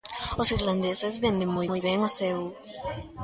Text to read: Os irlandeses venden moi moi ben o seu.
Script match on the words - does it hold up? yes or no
yes